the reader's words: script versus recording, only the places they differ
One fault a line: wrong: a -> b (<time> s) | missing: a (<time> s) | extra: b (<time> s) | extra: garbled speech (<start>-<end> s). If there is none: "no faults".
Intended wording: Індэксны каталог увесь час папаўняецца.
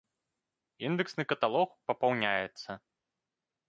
missing: увесь час (1.7 s)